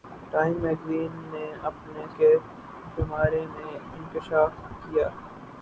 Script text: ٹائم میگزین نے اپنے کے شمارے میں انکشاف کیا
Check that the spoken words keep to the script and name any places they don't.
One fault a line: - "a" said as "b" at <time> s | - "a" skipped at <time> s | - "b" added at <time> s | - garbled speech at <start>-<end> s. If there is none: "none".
none